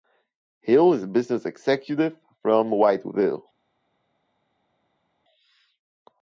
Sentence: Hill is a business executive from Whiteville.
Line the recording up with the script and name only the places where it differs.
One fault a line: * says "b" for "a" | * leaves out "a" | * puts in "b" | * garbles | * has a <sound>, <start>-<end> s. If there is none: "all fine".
all fine